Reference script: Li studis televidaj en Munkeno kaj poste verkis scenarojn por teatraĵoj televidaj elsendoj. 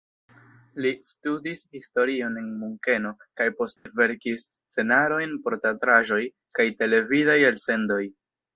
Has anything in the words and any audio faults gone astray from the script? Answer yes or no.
yes